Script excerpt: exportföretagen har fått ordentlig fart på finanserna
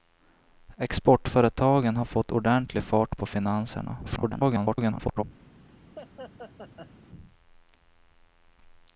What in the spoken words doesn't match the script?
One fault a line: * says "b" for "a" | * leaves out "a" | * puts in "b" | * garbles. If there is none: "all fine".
* garbles